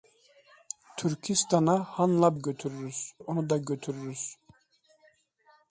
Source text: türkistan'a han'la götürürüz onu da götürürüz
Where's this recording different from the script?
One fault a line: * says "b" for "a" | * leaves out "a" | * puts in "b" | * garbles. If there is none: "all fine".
all fine